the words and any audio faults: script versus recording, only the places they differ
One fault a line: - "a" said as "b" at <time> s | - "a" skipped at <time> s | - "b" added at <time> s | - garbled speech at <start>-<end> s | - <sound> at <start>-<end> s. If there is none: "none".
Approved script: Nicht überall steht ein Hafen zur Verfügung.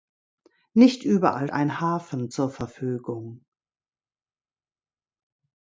- "steht" skipped at 1.5 s